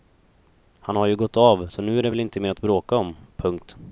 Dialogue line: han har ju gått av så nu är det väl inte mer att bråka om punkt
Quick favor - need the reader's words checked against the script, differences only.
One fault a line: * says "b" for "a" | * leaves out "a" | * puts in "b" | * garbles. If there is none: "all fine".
all fine